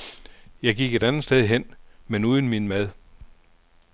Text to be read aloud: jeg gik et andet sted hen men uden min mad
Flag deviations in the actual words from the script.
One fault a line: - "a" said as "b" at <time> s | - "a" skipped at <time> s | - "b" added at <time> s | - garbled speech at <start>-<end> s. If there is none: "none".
none